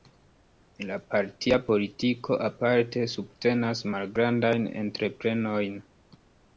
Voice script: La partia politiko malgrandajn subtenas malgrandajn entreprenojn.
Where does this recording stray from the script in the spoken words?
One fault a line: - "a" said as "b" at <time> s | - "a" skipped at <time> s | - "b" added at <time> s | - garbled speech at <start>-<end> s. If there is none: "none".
- "malgrandajn" said as "aparte" at 2.5 s